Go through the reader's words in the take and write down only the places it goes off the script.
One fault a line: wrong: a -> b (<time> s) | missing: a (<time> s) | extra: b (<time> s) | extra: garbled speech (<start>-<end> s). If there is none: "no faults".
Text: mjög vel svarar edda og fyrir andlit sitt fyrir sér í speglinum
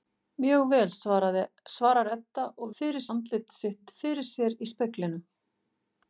no faults